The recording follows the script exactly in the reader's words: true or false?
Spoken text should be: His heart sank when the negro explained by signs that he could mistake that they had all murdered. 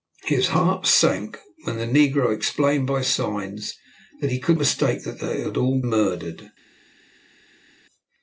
true